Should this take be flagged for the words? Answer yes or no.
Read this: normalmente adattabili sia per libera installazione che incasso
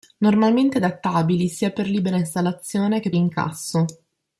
no